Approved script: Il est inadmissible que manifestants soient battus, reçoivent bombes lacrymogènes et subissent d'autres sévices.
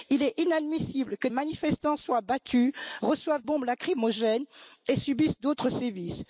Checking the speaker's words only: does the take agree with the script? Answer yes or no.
yes